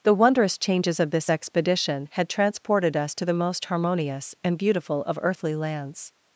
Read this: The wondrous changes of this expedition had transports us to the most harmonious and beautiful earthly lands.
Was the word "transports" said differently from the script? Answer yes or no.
yes